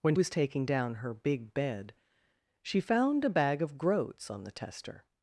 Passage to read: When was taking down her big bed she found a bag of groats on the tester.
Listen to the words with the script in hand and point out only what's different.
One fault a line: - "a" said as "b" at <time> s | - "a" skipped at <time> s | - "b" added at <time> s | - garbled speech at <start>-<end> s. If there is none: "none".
none